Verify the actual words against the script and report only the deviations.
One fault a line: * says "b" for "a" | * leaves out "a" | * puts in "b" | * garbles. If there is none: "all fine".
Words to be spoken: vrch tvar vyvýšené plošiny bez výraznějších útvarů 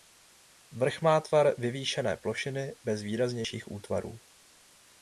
* puts in "má"